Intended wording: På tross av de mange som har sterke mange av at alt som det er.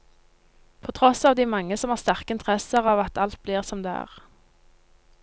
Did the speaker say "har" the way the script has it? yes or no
yes